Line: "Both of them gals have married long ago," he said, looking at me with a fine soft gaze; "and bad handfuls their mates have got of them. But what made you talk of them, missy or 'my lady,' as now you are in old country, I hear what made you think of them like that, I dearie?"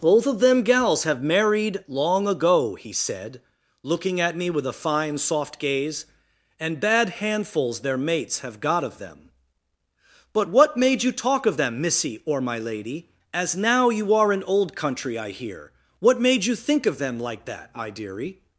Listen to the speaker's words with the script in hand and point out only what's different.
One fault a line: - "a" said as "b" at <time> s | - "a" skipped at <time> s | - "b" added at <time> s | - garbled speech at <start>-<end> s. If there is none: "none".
none